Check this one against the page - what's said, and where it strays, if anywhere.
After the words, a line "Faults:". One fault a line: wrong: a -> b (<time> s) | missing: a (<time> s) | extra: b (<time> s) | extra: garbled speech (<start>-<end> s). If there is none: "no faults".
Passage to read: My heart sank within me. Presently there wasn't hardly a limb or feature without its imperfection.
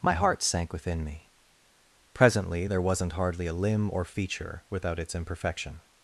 My heart sank within me. Presently there wasn't hardly a limb or feature without its imperfection.
Faults:
no faults